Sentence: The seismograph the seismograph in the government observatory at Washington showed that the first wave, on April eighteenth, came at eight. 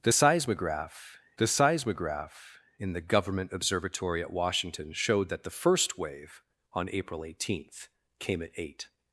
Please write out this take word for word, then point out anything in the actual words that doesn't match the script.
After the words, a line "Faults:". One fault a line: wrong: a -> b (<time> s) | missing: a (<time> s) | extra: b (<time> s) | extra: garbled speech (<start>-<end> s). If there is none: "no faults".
The seismograph the seismograph in the government observatory at Washington showed that the first wave, on April eighteenth, came at eight.
Faults:
no faults